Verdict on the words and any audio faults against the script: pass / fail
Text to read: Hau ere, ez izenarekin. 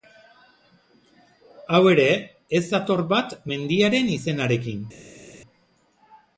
fail